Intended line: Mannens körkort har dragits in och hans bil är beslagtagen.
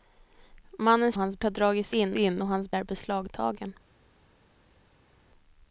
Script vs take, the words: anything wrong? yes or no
yes